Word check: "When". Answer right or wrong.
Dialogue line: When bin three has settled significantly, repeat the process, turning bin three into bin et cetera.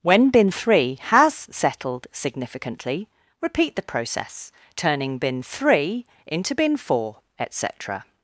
right